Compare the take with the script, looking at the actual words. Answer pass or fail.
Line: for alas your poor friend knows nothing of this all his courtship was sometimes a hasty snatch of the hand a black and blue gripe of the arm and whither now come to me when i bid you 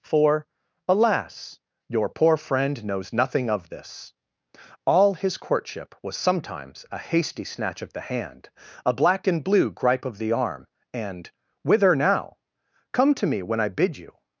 pass